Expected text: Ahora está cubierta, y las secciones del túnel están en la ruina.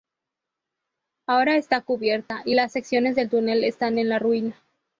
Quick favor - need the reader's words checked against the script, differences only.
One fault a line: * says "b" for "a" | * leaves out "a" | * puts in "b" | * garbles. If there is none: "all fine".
all fine